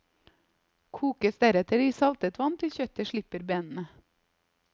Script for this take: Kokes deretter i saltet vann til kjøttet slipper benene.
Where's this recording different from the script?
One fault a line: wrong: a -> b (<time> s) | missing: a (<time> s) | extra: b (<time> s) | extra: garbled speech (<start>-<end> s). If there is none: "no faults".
no faults